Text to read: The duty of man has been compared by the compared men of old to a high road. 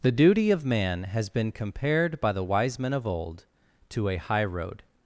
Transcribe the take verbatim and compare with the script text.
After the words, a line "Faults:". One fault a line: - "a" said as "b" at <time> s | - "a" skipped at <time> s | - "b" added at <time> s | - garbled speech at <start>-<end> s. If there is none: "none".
The duty of man has been compared by the wise men of old to a high road.
Faults:
- "compared" said as "wise" at 2.4 s